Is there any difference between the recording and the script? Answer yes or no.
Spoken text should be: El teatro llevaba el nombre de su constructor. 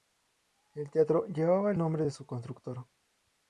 no